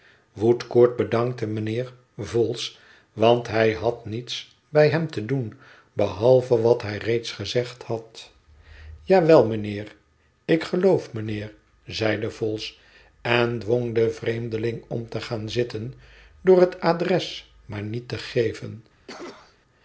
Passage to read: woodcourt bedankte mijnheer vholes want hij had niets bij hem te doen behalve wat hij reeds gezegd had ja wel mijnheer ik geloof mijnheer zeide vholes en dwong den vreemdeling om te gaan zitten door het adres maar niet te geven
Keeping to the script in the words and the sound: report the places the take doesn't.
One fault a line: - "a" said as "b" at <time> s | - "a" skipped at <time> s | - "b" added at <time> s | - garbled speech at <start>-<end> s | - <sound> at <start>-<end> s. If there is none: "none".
- cough at 19.1-19.6 s